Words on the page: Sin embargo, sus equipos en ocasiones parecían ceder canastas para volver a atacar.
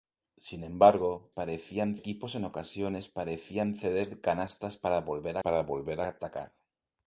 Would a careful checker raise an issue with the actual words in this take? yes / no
yes